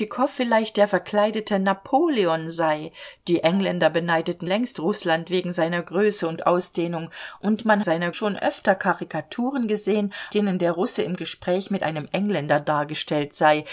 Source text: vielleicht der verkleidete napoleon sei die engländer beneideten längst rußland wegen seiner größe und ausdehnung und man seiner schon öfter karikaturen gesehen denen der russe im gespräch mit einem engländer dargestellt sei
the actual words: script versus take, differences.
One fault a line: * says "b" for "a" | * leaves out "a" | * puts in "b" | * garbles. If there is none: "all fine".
all fine